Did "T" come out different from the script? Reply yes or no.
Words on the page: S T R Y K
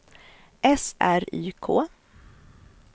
yes